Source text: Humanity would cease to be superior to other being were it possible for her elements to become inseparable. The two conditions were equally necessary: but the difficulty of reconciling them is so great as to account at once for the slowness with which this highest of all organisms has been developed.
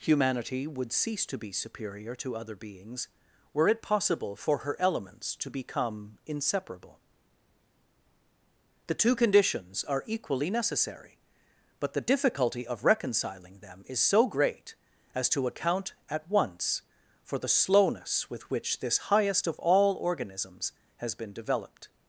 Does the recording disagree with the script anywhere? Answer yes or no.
yes